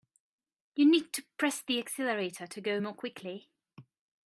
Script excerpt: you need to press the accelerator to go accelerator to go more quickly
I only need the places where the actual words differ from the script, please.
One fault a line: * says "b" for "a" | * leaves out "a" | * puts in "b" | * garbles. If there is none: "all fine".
* leaves out "accelerator to go"